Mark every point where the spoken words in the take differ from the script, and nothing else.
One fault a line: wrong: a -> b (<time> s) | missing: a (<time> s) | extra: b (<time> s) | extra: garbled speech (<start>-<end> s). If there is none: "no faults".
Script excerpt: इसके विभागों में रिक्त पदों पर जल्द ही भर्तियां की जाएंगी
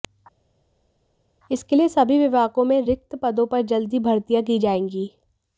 extra: लिए सभी (1.8 s)